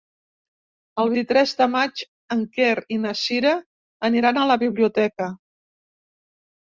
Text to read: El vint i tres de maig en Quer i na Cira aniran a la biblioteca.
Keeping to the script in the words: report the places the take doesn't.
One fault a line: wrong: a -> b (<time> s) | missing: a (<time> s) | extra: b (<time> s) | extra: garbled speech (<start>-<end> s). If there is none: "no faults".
missing: vint (1.1 s)